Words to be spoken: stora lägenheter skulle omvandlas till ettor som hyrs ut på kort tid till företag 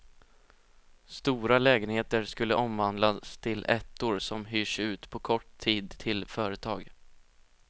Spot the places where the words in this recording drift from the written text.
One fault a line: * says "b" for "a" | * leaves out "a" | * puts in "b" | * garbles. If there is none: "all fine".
all fine